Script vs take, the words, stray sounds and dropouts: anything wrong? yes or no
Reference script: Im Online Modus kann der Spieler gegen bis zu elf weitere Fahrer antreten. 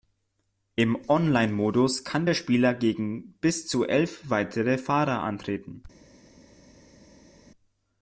no